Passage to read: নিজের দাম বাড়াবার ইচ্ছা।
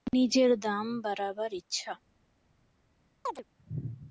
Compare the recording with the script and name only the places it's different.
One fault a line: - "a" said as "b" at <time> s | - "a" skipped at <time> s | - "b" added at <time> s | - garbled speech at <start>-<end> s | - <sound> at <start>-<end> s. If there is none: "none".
- chirp at 3.3-3.4 s